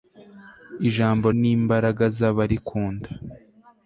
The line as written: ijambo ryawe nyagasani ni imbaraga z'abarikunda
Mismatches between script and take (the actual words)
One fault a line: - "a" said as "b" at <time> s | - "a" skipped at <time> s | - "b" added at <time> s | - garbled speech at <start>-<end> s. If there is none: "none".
- "ryawe nyagasani" skipped at 1.3 s